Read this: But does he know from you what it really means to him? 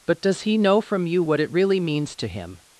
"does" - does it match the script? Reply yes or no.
yes